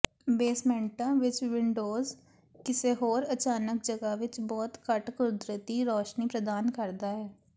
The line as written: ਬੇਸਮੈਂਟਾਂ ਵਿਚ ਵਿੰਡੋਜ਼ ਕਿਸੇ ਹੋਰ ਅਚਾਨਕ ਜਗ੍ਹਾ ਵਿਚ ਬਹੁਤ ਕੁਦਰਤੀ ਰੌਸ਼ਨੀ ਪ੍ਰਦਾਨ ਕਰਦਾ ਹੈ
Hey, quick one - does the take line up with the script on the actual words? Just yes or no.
no